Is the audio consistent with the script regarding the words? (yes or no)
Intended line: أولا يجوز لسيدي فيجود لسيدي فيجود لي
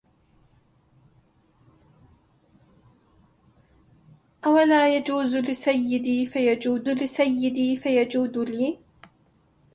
yes